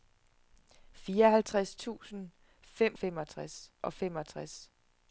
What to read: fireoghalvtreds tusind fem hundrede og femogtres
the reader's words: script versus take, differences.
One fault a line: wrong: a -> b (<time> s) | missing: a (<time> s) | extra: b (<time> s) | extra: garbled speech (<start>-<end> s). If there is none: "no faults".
wrong: hundrede -> femogtres (2.9 s)